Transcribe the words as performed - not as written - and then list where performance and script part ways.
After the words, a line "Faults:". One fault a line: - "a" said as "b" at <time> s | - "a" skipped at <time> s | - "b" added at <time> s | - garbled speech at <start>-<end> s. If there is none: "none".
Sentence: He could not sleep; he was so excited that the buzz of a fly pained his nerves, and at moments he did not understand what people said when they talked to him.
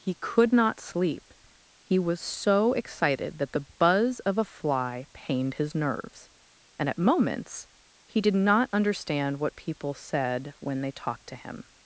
He could not sleep; he was so excited that the buzz of a fly pained his nerves, and at moments he did not understand what people said when they talked to him.
Faults:
none